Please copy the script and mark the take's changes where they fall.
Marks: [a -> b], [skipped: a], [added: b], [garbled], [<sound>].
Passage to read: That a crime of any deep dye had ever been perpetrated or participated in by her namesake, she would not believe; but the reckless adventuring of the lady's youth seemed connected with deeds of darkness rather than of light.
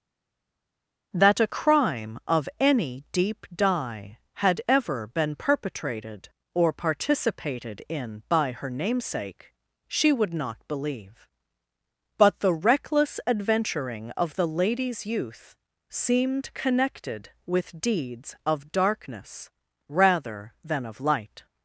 That a crime of any deep dye had ever been perpetrated or participated in by her namesake, she would not believe; but the reckless adventuring of the lady's youth seemed connected with deeds of darkness rather than of light.